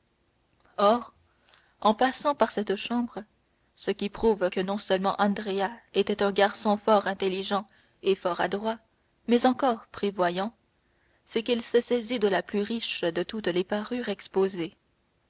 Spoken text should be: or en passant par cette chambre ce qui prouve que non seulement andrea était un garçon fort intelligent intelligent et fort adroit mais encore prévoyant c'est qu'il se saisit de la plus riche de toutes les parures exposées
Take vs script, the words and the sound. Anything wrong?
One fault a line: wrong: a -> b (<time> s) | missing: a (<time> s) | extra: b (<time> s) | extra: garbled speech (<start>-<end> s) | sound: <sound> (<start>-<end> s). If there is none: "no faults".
missing: intelligent (7.7 s)